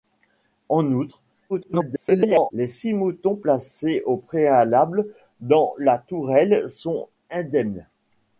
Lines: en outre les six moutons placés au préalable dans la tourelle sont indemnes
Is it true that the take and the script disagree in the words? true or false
true